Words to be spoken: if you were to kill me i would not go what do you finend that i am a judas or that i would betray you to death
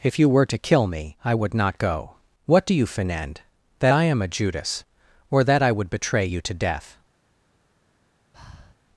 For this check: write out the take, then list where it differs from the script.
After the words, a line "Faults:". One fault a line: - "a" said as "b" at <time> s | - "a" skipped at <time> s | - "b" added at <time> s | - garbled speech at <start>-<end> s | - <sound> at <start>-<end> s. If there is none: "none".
if you were to kill me i would not go what do you finend that i am a judas or that i would betray you to death
Faults:
- breath at 8.3-8.8 s